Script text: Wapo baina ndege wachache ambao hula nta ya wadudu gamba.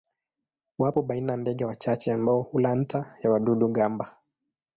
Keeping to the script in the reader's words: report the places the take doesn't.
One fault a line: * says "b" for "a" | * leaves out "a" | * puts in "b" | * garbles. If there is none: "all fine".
all fine